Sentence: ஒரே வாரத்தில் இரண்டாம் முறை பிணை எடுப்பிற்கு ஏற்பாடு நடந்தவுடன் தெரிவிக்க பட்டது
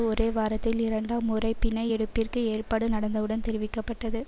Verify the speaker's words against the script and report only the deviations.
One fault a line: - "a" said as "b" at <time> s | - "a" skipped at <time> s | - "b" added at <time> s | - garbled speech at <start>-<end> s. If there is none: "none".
none